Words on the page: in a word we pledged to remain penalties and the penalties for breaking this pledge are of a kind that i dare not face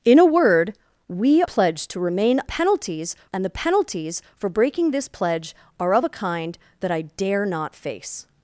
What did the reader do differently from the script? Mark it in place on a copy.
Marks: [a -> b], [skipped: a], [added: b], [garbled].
in a word we pledged to remain penalties and the penalties for breaking this pledge are of a kind that i dare not face